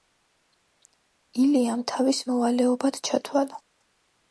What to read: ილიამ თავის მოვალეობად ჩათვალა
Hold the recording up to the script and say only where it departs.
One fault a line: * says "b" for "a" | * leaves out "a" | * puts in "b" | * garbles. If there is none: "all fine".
all fine